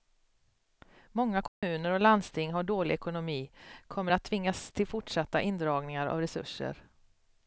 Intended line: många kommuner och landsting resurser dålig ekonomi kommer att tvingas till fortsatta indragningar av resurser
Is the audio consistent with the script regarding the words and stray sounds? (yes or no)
no